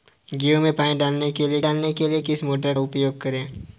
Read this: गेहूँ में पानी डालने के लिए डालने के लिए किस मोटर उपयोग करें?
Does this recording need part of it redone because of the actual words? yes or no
no